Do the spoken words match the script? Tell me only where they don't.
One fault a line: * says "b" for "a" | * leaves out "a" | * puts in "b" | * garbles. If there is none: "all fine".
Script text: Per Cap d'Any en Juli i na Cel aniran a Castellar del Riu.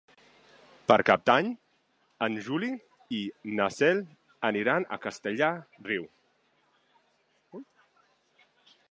* leaves out "del"